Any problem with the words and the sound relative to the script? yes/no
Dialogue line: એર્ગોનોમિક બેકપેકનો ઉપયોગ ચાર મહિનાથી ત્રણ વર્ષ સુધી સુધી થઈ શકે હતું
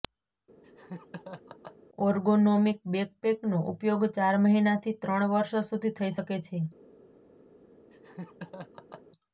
yes